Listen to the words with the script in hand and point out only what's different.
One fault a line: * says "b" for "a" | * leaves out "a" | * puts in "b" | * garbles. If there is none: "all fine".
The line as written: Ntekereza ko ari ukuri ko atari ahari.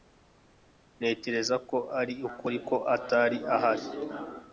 all fine